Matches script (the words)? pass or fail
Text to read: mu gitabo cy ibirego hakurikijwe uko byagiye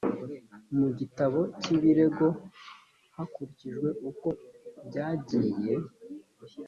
pass